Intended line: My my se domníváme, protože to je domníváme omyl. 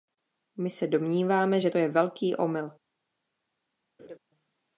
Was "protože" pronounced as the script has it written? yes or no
no